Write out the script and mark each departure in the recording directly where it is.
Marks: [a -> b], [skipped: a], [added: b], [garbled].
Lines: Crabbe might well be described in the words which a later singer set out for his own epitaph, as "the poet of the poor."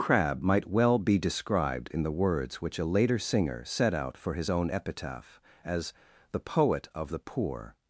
Crabbe might well be described in the words which a later singer set out for his own epitaph, as "the poet of the poor."